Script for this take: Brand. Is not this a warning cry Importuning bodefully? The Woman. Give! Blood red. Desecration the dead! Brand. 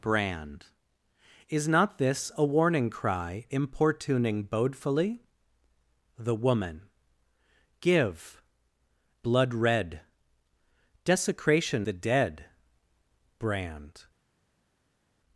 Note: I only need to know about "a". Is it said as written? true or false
true